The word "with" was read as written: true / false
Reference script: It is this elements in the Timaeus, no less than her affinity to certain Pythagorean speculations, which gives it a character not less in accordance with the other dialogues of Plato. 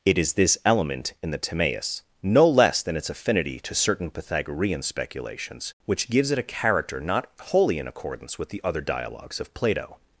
true